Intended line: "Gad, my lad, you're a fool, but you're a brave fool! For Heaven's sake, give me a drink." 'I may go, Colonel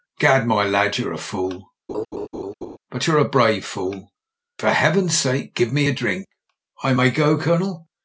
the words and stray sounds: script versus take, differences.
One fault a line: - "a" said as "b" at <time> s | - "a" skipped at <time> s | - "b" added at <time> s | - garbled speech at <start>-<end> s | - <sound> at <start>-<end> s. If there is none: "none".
- laugh at 1.9-2.8 s